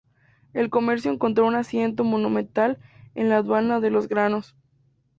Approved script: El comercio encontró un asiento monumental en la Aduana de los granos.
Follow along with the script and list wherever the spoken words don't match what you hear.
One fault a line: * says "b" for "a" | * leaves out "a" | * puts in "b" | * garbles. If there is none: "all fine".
all fine